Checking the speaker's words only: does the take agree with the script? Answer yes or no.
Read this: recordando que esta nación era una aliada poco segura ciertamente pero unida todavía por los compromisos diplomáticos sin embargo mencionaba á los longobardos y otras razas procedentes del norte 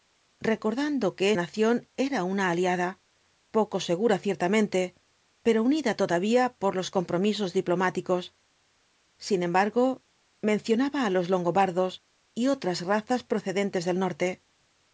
no